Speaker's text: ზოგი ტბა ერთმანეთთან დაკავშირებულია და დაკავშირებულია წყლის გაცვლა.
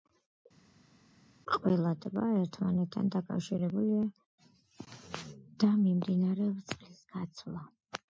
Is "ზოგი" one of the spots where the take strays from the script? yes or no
yes